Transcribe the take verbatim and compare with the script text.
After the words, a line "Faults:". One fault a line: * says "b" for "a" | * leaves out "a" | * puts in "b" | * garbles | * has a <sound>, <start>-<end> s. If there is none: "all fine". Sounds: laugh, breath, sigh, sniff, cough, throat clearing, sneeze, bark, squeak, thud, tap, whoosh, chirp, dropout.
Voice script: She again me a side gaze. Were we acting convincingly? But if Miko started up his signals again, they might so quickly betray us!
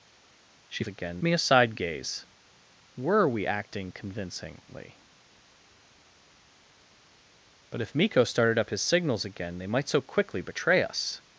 She again me a side gaze. Were we acting convincingly? But if Miko started up his signals again, they might so quickly betray us!
Faults:
all fine